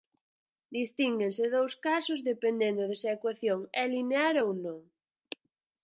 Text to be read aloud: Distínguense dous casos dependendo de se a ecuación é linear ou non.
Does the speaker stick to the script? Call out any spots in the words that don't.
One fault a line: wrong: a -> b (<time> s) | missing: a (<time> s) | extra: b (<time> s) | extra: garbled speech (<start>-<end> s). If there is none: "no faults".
no faults